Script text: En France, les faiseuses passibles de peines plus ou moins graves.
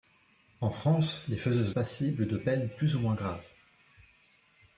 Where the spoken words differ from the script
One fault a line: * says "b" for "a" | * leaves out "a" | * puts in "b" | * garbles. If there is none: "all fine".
all fine